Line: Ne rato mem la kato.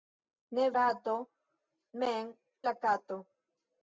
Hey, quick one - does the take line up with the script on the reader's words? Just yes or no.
yes